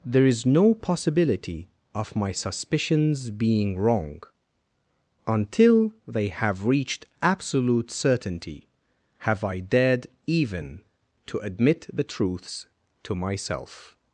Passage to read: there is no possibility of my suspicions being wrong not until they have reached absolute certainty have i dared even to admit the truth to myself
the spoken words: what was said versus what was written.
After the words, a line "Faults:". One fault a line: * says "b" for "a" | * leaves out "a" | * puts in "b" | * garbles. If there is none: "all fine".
there is no possibility of my suspicions being wrong until they have reached absolute certainty have i dared even to admit the truths to myself
Faults:
* leaves out "not"
* says "truths" for "truth"